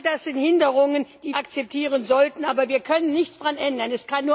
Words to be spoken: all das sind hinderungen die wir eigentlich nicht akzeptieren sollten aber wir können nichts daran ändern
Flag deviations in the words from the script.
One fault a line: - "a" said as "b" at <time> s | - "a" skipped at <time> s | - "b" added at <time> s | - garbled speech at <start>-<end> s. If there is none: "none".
- "wir eigentlich nicht" skipped at 1.4 s